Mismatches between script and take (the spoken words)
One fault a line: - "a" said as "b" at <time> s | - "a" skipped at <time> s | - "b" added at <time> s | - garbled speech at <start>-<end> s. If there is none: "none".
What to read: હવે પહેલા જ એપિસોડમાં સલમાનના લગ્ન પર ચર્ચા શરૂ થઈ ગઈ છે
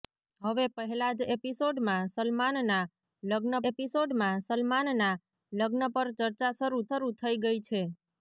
- "એપિસોડમાં સલમાનના લગ્ન" added at 3.7 s
- "શરૂ" added at 6.9 s